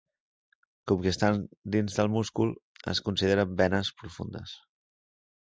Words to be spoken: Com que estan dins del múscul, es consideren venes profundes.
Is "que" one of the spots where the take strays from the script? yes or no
no